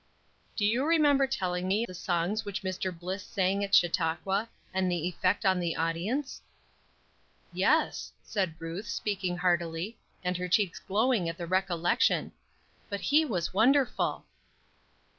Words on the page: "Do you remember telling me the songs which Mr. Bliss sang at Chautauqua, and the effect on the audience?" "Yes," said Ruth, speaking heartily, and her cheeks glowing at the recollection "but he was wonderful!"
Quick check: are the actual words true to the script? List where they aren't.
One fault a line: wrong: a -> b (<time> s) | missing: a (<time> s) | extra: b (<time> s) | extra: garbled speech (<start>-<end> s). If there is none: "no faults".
no faults